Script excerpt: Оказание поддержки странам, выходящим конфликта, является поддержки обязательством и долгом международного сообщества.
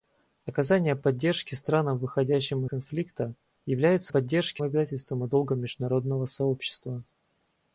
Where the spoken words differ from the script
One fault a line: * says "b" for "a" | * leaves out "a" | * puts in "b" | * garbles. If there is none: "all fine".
all fine